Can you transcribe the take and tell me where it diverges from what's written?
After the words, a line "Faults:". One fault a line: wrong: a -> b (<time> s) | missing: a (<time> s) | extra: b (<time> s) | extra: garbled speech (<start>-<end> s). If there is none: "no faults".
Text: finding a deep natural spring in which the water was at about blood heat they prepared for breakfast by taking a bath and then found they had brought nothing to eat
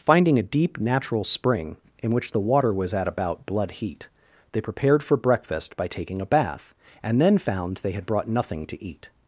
finding a deep natural spring in which the water was at about blood heat they prepared for breakfast by taking a bath and then found they had brought nothing to eat
Faults:
no faults